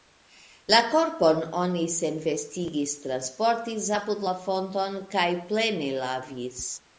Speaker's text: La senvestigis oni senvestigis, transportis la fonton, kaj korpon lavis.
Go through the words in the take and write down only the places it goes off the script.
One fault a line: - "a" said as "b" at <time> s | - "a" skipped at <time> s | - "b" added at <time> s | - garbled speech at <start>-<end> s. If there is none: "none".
- "senvestigis" said as "korpon" at 0.9 s
- "apud" added at 4.0 s
- "korpon" said as "plene" at 5.5 s